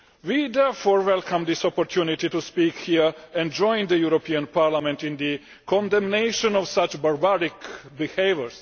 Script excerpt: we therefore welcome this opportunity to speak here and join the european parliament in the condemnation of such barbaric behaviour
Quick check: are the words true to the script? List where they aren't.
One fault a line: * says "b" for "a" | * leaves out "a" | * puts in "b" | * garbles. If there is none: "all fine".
all fine